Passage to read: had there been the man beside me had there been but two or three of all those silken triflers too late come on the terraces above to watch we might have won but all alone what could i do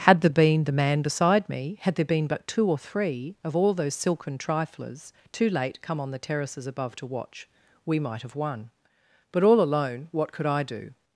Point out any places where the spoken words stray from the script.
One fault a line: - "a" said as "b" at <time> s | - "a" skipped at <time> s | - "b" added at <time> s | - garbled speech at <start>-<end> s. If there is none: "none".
none